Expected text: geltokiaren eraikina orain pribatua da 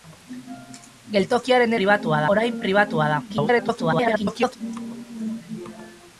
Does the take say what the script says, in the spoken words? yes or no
no